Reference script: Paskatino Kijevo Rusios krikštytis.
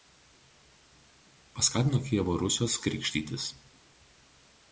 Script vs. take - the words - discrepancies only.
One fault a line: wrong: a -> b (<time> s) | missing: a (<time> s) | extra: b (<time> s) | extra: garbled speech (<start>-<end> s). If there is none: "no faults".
no faults